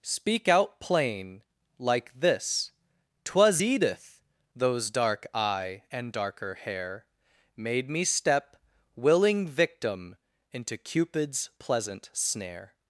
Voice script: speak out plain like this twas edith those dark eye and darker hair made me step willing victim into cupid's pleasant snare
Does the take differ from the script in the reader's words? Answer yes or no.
no